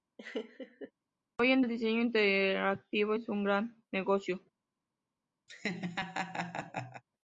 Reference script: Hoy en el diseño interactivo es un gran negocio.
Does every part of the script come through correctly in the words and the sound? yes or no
no